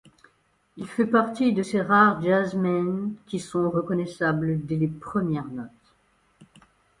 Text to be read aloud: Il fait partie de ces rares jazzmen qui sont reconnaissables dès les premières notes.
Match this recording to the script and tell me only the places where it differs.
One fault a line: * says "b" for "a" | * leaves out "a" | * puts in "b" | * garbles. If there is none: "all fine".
all fine